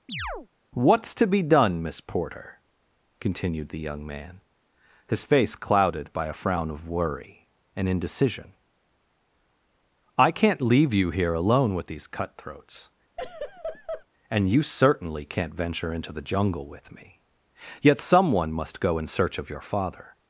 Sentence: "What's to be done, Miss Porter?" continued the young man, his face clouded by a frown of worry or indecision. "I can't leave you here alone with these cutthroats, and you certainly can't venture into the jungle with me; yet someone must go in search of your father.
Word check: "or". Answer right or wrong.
wrong